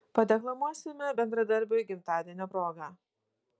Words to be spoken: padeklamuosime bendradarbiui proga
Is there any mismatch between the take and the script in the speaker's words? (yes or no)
yes